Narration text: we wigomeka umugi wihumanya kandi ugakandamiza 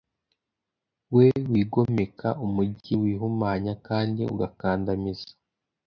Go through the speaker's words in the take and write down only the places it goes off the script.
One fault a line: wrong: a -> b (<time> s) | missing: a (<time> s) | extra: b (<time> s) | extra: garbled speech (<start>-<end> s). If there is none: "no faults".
no faults